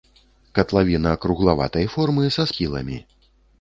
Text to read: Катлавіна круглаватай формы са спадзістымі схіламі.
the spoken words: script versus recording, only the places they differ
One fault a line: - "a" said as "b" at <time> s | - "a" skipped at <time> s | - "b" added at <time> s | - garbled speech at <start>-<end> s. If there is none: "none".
- "спадзістымі" skipped at 2.5 s